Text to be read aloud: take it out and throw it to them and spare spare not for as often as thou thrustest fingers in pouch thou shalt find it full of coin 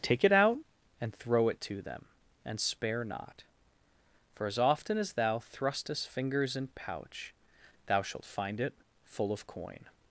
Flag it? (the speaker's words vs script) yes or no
yes